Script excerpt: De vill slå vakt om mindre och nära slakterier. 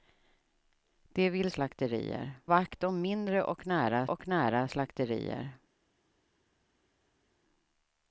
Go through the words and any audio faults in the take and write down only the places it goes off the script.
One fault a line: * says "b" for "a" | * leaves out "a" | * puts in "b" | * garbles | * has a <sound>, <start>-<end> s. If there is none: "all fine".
* says "slakterier" for "slå"
* puts in "och nära"